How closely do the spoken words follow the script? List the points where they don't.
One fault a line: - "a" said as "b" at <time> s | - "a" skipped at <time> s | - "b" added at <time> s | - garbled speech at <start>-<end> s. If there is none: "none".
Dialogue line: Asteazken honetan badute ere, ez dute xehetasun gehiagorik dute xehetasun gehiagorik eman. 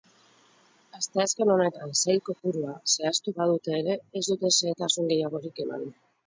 - "sail kopurua zehaztu" added at 2.0 s
- "dute xehetasun gehiagorik" skipped at 5.6 s